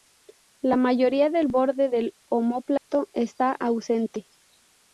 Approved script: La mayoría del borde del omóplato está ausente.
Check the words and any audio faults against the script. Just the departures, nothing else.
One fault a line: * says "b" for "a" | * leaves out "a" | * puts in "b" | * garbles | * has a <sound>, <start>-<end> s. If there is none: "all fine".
* has a dropout, 2.8-2.9 s